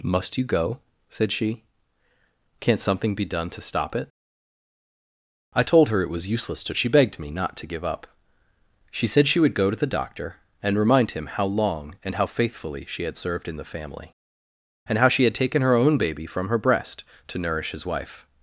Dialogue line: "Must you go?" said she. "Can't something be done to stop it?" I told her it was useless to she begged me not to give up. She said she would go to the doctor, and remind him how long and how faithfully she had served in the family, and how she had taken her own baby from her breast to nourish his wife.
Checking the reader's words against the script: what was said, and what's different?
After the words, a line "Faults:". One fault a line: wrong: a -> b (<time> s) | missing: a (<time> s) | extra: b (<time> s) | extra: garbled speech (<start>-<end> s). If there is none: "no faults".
"Must you go?" said she. "Can't something be done to stop it?" I told her it was useless to she begged me not to give up. She said she would go to the doctor, and remind him how long and how faithfully she had served in the family, and how she had taken her own baby from her breast to nourish his wife.
Faults:
no faults